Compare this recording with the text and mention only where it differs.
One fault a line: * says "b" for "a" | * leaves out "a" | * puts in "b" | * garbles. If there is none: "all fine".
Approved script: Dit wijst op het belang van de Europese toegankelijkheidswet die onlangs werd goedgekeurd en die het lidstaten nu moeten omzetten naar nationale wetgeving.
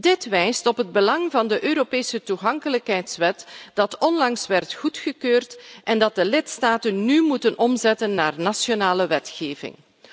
* says "de" for "het"